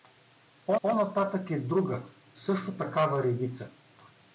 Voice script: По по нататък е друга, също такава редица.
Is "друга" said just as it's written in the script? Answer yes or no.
yes